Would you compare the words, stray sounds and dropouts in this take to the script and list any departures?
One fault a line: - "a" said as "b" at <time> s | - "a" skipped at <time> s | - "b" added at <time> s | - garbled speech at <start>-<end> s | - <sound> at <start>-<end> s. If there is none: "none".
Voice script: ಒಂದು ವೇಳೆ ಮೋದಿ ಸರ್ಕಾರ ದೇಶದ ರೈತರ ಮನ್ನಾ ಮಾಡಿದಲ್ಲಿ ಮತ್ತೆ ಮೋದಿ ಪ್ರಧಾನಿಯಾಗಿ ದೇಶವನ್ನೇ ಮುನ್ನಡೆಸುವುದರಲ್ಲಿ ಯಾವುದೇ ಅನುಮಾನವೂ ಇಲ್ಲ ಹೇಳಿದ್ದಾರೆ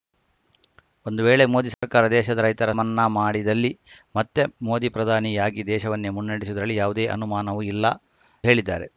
- dropout at 1.7-1.8 s